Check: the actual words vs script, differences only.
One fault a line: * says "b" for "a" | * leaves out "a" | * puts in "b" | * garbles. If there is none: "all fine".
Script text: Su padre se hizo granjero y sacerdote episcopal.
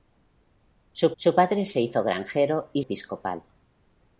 * puts in "su"
* leaves out "sacerdote"